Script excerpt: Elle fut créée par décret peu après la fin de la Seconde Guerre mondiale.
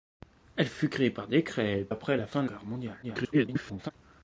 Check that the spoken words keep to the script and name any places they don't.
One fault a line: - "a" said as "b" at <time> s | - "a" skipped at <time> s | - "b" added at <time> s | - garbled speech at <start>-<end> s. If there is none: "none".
- "peu" skipped at 1.9 s
- "la Seconde" skipped at 2.5 s
- garbled speech at 3.0-3.9 s